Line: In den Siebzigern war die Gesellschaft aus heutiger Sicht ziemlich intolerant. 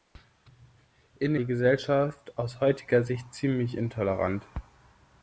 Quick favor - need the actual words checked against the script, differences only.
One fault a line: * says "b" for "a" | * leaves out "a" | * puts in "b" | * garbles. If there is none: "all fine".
* leaves out "den Siebzigern war"